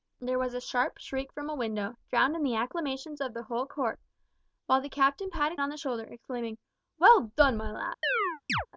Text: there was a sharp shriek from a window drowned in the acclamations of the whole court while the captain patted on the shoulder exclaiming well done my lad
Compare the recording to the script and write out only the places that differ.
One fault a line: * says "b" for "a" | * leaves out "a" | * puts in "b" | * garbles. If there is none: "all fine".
all fine